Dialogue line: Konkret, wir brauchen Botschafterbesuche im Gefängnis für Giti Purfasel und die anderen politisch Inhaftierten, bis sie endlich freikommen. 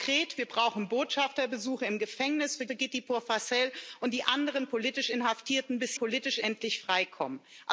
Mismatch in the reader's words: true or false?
true